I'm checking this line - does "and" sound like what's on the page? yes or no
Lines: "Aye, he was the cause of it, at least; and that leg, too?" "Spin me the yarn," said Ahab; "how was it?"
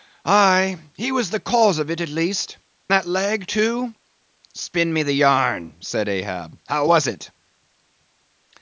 no